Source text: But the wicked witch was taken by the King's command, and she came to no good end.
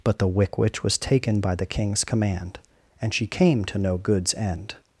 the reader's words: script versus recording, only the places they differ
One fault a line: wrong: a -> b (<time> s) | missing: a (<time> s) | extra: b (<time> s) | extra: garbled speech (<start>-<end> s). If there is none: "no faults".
wrong: wicked -> wick (0.3 s)
wrong: good -> goods (4.0 s)